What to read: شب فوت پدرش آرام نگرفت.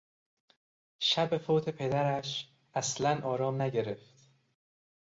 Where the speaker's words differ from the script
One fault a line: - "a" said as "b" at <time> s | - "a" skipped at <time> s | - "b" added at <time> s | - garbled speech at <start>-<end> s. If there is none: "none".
- "اصلا" added at 2.7 s